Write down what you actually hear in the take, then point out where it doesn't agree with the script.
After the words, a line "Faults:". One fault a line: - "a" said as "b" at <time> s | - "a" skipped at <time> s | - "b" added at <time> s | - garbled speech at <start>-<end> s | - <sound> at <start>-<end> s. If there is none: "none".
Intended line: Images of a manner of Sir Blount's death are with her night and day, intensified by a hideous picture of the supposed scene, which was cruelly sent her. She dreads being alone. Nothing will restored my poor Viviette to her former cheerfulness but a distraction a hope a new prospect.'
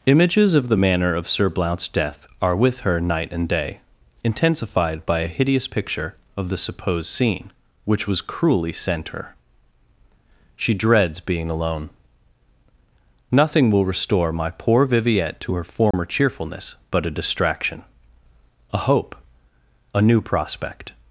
Images of the manner of Sir Blount's death are with her night and day, intensified by a hideous picture of the supposed scene, which was cruelly sent her. She dreads being alone. Nothing will restore my poor Viviette to her former cheerfulness but a distraction a hope a new prospect.'
Faults:
- "a" said as "the" at 0.7 s
- "restored" said as "restore" at 13.9 s
- dropout at 15.9-15.9 s